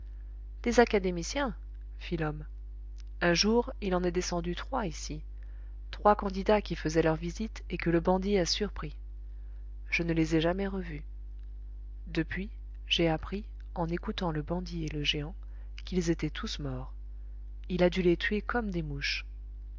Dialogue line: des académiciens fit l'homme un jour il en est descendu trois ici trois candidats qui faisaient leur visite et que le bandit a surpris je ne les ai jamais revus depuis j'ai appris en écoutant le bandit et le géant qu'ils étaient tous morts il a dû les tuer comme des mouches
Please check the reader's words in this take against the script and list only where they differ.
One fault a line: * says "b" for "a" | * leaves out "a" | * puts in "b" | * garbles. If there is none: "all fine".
all fine